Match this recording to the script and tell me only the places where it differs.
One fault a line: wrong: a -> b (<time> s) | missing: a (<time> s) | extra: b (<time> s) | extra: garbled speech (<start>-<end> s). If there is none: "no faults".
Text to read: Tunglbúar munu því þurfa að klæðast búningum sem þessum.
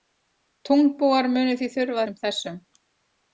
missing: að klæðast búningum (2.0 s)